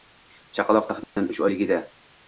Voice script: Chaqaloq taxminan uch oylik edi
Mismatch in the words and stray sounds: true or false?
true